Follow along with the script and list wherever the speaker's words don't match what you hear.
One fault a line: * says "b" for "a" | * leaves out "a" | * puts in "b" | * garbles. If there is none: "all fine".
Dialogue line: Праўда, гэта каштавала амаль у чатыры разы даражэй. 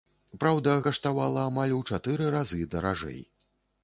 * leaves out "гэта"